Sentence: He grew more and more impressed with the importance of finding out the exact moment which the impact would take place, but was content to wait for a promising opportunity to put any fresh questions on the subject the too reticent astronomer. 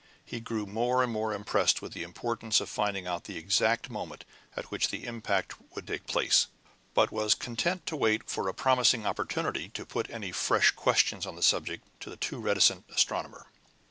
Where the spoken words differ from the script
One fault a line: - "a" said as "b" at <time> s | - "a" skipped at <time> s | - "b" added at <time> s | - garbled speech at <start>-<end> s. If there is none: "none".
- "at" added at 4.6 s
- "to" added at 12.0 s